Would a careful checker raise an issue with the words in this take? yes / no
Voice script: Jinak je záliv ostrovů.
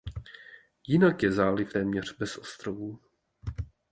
yes